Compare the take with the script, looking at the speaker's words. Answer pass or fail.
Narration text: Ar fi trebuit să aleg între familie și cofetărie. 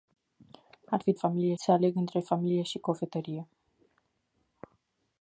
fail